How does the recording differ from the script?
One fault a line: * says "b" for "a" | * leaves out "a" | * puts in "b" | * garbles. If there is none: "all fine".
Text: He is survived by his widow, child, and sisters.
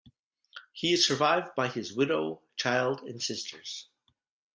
all fine